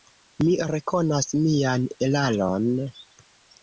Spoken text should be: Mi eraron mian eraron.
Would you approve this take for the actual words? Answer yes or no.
no